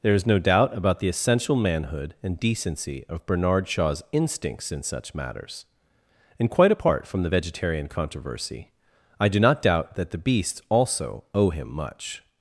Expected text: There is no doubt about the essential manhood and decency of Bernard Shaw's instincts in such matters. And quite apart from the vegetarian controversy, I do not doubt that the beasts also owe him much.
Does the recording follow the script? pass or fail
pass